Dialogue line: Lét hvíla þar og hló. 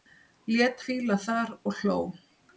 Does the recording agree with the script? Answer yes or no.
yes